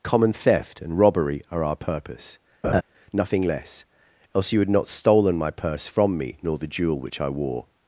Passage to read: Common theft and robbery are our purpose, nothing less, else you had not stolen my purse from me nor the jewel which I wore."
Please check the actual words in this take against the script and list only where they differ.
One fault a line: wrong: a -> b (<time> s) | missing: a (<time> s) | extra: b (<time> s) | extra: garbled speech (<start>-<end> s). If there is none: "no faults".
no faults